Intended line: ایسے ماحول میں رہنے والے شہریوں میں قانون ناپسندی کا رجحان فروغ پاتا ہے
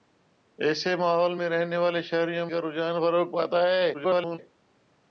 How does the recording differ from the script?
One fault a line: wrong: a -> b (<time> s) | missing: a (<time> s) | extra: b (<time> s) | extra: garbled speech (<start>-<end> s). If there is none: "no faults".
missing: میں قانون ناپسندی (2.5 s)
extra: garbled speech (3.9-4.4 s)